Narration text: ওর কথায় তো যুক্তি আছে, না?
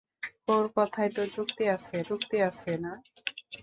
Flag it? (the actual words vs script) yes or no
yes